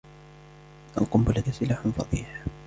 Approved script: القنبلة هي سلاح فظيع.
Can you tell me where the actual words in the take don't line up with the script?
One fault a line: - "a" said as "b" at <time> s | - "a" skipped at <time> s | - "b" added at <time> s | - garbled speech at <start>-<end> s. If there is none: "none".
none